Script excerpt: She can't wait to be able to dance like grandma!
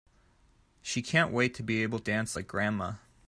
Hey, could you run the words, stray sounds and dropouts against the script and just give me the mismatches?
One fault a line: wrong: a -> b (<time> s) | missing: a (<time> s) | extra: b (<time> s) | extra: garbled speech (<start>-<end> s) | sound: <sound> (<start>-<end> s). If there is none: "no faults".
missing: to (2.0 s)